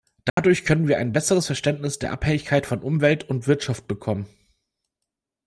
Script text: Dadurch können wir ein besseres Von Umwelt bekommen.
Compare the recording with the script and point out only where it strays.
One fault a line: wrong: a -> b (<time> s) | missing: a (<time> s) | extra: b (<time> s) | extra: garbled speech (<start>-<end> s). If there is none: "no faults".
extra: Verständnis der Abhängigkeit (1.4 s)
extra: und Wirtschaft (3.3 s)